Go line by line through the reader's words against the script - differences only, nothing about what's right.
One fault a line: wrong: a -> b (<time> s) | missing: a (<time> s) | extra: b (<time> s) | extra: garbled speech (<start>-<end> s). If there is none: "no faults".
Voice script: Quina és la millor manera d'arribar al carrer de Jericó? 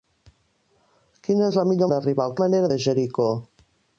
missing: manera (1.9 s)
wrong: carrer -> manera (2.4 s)